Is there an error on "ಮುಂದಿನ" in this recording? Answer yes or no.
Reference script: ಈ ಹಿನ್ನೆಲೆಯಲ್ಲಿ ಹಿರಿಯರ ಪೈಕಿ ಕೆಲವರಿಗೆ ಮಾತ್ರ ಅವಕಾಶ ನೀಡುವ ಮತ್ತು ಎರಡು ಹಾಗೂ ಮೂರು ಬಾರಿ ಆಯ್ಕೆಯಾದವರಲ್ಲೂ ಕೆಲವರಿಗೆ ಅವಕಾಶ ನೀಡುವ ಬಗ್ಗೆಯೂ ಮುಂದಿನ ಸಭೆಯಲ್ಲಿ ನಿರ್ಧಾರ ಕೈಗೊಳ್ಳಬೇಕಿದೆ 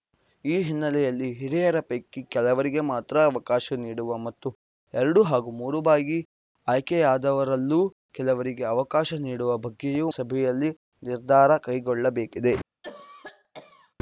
yes